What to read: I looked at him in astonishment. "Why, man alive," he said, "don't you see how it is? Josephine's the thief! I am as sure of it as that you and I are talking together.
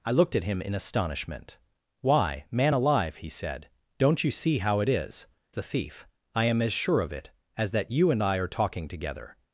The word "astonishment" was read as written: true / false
true